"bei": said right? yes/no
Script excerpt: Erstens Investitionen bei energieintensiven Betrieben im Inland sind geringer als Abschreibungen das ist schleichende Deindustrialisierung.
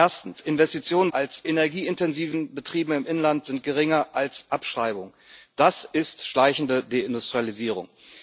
no